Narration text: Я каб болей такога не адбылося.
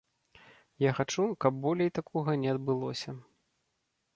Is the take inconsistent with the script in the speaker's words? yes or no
yes